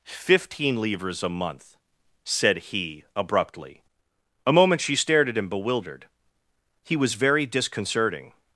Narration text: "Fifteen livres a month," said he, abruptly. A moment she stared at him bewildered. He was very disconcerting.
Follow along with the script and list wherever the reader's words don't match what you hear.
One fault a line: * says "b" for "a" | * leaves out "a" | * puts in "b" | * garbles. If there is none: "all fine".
all fine